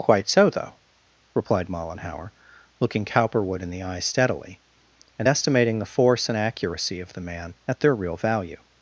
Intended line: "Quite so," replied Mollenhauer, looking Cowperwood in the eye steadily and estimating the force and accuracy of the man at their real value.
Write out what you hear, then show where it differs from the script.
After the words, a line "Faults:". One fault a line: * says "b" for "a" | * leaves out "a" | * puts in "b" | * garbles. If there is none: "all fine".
"Quite so," though replied Mollenhauer, looking Cowperwood in the eye steadily and estimating the force and accuracy of the man at their real value.
Faults:
* puts in "though"